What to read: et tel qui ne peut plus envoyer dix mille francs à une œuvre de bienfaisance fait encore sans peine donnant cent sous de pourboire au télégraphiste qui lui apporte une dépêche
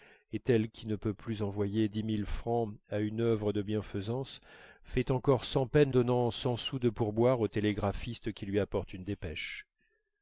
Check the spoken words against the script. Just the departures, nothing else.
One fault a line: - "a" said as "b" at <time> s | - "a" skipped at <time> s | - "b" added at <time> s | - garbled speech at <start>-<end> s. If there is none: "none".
none